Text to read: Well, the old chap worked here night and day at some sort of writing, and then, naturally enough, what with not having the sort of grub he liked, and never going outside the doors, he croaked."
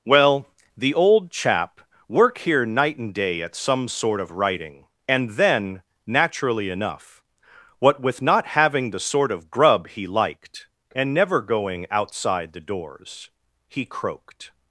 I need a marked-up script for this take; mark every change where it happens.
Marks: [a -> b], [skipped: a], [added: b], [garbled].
Well, the old chap [worked -> work] here night and day at some sort of writing, and then, naturally enough, what with not having the sort of grub he liked, and never going outside the doors, he croaked."